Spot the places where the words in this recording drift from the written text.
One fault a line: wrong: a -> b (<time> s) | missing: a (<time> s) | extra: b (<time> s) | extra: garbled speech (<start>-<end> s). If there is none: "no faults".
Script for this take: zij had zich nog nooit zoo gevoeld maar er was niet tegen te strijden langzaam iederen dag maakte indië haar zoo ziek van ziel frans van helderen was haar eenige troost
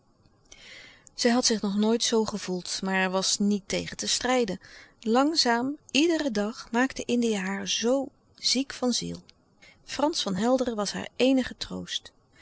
no faults